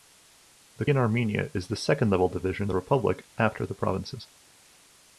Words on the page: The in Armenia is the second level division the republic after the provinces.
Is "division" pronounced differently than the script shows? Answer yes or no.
no